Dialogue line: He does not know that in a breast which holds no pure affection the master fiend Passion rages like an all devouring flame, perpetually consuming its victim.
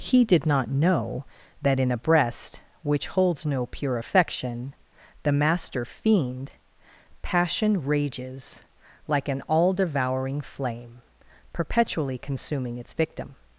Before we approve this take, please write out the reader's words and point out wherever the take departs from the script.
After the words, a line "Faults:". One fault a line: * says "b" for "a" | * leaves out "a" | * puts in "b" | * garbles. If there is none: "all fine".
He did not know that in a breast which holds no pure affection the master fiend Passion rages like an all devouring flame, perpetually consuming its victim.
Faults:
* says "did" for "does"